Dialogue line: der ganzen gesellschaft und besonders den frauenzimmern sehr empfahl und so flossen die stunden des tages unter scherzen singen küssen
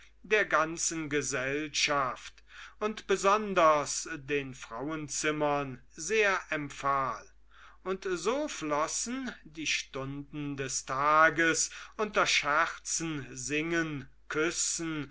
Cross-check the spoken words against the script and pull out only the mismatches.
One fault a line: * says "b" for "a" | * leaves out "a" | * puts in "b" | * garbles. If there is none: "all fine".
all fine